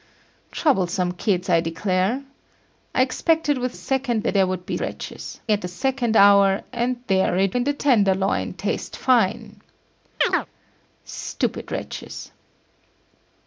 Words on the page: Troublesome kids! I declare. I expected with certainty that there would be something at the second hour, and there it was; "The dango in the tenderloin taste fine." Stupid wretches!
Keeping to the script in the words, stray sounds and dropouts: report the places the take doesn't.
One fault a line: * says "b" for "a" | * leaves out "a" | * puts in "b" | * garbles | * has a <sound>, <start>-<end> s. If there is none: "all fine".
* says "second" for "certainty"
* says "wretches" for "something"
* leaves out "was The dango"
* has a chirp, 10.2-10.5 s